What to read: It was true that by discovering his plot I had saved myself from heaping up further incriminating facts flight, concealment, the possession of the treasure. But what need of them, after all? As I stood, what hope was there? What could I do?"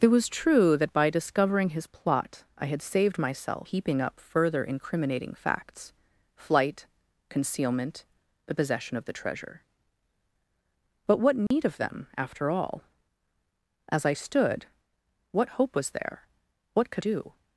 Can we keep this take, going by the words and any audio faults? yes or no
no